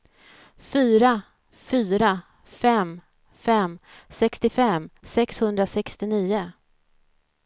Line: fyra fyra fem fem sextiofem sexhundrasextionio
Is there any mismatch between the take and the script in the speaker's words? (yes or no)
no